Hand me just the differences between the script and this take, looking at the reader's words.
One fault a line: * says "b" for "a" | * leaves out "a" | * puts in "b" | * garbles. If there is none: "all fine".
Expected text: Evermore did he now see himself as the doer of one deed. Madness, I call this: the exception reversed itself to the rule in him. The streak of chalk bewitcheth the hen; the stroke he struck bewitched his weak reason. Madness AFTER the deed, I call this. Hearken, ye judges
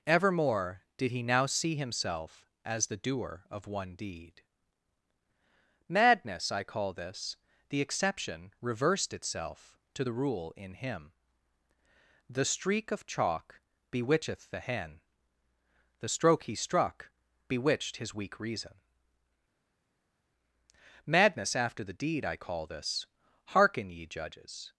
all fine